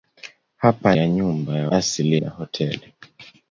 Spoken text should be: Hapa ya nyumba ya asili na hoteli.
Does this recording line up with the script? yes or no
yes